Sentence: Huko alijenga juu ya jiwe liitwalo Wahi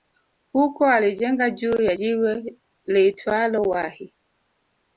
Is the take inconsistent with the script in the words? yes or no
no